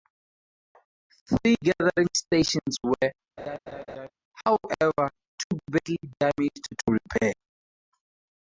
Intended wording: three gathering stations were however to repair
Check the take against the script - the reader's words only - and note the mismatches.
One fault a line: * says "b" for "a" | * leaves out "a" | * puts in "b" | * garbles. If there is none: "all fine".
* puts in "too badly damaged"